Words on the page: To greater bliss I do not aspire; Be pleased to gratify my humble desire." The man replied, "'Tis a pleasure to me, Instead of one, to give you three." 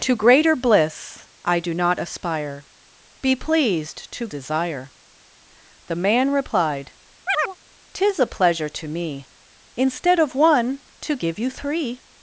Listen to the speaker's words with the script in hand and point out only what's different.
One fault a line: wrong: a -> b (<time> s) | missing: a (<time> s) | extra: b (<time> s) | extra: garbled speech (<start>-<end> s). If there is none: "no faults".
missing: gratify my humble (4.3 s)